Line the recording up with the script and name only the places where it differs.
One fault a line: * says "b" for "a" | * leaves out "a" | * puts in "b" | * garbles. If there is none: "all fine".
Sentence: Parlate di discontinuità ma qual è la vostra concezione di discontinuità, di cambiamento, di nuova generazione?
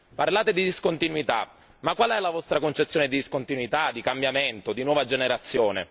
all fine